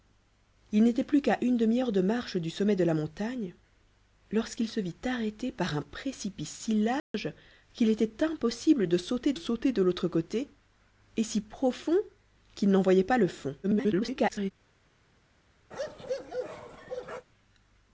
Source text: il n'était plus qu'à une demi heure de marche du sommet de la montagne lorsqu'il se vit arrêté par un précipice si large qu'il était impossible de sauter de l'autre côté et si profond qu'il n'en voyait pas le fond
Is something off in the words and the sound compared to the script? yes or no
yes